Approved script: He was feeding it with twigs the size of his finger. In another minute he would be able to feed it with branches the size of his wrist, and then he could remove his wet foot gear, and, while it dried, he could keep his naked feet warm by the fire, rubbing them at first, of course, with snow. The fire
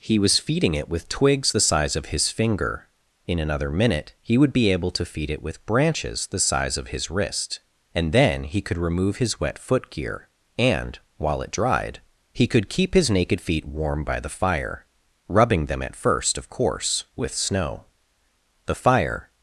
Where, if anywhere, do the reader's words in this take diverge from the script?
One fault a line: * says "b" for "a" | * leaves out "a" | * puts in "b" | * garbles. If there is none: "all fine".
all fine